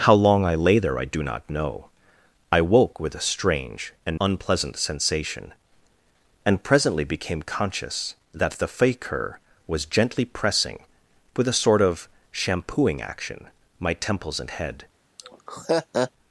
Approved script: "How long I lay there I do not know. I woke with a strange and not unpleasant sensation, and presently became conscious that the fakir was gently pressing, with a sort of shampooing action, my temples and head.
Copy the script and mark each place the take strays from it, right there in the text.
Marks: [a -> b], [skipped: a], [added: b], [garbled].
"How long I lay there I do not know. I woke with a strange and [skipped: not] unpleasant sensation, and presently became conscious that the fakir was gently pressing, with a sort of shampooing action, my temples and head.